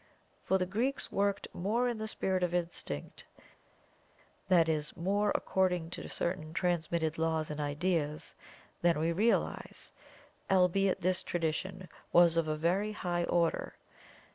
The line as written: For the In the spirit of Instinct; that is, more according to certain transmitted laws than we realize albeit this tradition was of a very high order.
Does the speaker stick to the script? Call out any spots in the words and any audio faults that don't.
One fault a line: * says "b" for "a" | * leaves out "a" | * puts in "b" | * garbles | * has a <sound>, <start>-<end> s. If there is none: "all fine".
* puts in "Greeks worked more"
* puts in "and ideas"